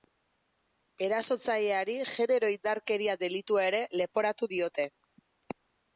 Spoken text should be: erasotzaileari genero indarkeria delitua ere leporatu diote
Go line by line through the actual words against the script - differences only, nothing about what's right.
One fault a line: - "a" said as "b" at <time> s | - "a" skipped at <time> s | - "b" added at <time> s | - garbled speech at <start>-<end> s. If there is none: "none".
none